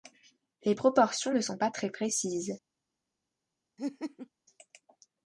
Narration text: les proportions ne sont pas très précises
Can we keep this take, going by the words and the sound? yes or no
no